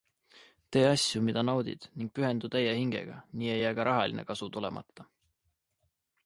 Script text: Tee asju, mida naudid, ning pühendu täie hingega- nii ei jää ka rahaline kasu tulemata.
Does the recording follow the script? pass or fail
pass